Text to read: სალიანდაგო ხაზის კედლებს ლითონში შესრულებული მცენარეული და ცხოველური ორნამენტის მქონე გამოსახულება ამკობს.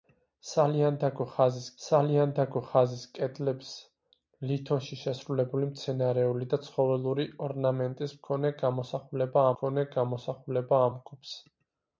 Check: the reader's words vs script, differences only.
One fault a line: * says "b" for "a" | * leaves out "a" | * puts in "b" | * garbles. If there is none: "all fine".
* puts in "სალიანდაგო ხაზის"
* puts in "მქონე გამოსახულება"